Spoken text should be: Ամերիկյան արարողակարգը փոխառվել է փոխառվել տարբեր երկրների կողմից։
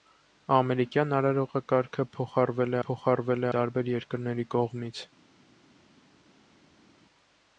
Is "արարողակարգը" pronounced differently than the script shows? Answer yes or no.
no